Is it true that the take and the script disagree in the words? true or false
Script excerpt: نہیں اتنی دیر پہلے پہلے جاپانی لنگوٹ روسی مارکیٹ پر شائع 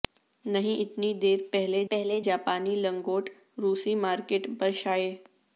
false